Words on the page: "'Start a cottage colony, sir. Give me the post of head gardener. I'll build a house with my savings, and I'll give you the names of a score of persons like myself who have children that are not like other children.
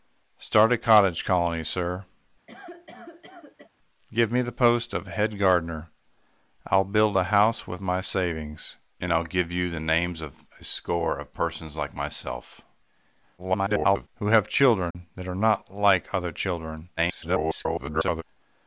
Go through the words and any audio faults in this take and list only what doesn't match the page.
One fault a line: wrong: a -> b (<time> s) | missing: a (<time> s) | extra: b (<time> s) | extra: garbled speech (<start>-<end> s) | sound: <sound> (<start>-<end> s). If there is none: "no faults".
sound: cough (2.5-3.7 s)
extra: garbled speech (13.4-14.1 s)
sound: dropout (14.9-14.9 s)
extra: garbled speech (17.0-18.2 s)